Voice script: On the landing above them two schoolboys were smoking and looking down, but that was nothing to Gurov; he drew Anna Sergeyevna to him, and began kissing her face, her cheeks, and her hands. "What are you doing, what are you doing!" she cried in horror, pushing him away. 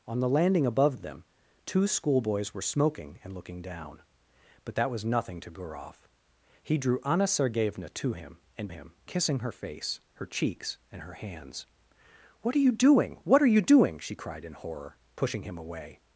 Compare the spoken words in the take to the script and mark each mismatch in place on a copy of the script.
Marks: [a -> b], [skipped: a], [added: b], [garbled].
On the landing above them two schoolboys were smoking and looking down, but that was nothing to Gurov; he drew Anna Sergeyevna to him, and [began -> him] kissing her face, her cheeks, and her hands. "What are you doing, what are you doing!" she cried in horror, pushing him away.